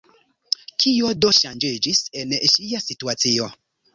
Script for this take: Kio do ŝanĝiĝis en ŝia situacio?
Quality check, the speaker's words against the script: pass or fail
pass